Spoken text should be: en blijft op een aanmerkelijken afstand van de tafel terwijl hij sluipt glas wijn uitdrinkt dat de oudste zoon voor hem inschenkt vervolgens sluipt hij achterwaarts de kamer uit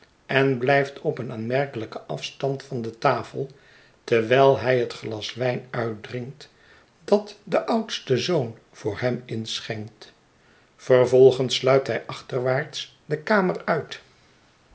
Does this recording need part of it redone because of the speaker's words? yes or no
yes